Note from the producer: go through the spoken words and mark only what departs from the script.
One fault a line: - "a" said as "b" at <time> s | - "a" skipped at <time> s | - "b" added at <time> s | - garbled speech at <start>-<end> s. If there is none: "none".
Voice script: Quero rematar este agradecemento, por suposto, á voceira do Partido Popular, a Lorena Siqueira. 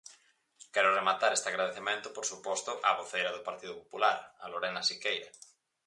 none